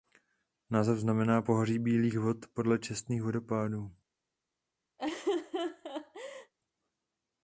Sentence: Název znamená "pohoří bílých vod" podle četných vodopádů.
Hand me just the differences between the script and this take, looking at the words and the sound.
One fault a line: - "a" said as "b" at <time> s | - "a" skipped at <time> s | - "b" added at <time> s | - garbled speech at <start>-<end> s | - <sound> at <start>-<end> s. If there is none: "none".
- laugh at 5.0-6.5 s